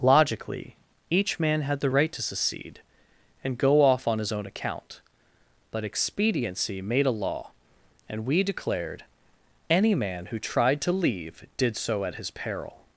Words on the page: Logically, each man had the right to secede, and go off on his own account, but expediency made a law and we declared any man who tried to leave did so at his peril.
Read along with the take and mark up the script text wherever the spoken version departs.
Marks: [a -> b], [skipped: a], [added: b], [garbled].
Logically, each man had the right to secede, and go off on his own account, but expediency made a law and we declared any man who tried to leave did so at his peril.